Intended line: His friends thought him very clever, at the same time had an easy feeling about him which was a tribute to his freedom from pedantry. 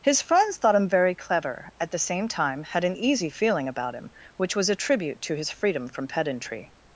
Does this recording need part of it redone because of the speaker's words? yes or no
no